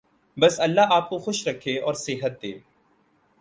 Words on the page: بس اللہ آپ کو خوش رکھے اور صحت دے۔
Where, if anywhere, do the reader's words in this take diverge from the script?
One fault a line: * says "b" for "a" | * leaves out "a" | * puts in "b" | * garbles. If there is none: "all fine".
all fine